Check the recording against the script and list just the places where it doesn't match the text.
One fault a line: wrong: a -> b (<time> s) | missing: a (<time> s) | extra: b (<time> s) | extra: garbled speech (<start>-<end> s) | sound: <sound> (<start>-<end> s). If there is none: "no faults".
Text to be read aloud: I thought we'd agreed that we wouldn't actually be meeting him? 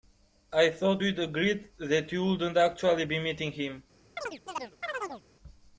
wrong: we -> you (2.1 s)
sound: chirp (4.2-5.2 s)